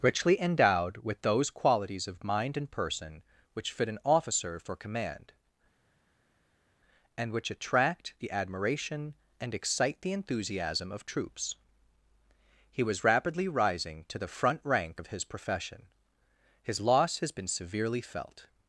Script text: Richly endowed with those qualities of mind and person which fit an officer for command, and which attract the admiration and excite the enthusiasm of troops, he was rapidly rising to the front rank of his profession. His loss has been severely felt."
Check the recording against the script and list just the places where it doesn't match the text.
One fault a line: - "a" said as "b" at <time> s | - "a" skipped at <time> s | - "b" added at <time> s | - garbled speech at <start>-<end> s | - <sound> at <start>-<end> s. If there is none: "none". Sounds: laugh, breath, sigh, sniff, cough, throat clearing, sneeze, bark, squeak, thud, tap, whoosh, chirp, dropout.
none